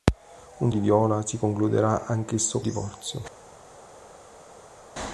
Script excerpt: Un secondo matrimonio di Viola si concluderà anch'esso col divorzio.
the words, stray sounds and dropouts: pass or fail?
fail